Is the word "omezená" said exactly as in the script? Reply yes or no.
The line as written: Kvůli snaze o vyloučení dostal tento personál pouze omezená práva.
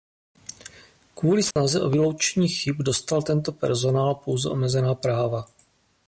yes